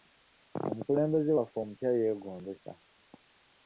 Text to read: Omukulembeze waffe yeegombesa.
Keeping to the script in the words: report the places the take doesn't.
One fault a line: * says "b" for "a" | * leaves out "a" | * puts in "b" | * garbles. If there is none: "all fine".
* puts in "omupya"